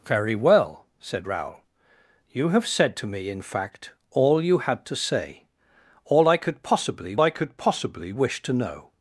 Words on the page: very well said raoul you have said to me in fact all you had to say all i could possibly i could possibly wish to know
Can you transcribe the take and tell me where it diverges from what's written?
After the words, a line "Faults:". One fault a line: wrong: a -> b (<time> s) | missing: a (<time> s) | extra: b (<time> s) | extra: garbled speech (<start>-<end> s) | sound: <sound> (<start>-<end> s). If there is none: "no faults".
very well said raoul you have said to me in fact all you had to say all i could possibly i could possibly wish to know
Faults:
no faults